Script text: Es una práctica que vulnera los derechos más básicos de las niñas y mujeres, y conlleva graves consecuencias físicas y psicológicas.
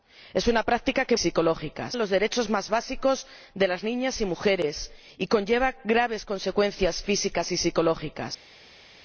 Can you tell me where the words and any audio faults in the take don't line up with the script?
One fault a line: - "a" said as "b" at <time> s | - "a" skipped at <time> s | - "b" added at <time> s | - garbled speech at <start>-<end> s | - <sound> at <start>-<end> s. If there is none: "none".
- "vulnera" said as "psicológicas" at 1.2 s